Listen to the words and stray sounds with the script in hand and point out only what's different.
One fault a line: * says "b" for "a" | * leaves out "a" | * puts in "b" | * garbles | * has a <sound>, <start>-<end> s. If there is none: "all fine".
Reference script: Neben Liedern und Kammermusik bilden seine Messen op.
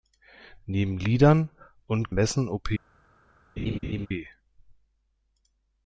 * leaves out "Kammermusik bilden seine"
* has a laugh, 3.6-4.1 s